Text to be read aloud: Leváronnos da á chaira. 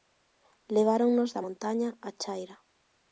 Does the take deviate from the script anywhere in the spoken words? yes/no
yes